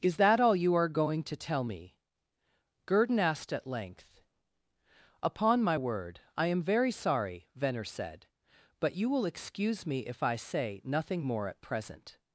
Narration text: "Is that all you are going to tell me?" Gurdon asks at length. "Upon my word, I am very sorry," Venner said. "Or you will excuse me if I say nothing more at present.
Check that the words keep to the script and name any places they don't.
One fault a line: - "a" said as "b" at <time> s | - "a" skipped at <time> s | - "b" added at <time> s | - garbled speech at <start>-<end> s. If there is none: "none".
- "asks" said as "asked" at 3.2 s
- "Or" said as "But" at 8.8 s